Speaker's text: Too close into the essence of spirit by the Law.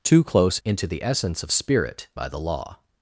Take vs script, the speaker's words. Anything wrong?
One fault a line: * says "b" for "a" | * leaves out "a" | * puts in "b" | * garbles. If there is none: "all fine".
all fine